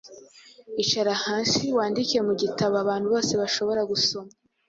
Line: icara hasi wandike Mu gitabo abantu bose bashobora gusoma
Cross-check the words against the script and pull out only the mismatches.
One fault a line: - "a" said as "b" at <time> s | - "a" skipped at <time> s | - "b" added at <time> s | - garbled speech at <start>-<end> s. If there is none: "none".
none